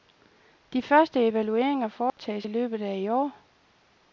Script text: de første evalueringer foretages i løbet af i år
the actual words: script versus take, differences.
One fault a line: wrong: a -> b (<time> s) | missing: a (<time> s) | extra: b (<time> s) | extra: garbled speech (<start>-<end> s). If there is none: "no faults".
no faults